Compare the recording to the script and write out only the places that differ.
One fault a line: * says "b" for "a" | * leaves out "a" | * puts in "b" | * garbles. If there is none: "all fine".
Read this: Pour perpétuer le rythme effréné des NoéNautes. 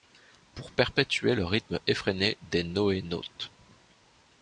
all fine